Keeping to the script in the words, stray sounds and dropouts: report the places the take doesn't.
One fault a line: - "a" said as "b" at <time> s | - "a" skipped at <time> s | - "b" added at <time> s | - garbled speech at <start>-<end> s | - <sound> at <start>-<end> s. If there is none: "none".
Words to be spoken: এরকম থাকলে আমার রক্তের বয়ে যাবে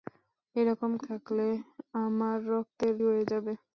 none